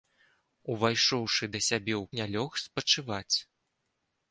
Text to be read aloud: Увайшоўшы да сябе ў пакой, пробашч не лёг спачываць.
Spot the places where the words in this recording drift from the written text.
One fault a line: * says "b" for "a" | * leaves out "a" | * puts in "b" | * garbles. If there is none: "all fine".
* leaves out "пакой пробашч"